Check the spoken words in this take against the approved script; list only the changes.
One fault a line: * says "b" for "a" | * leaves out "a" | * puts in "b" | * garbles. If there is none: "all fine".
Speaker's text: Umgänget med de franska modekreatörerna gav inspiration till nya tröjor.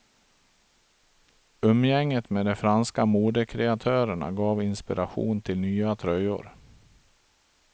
all fine